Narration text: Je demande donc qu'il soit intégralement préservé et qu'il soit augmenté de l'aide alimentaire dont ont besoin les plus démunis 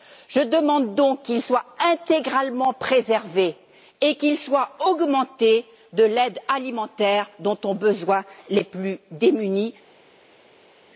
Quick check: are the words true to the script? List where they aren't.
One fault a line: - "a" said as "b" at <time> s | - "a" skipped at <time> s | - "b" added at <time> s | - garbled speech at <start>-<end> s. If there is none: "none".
none